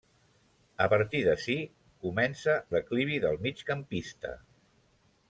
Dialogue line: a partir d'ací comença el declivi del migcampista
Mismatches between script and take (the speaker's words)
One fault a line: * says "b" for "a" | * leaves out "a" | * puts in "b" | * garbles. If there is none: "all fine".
* leaves out "el"